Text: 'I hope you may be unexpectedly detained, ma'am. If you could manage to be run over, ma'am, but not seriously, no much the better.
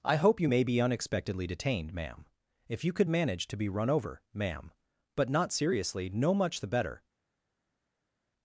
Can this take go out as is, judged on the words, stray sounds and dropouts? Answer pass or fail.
pass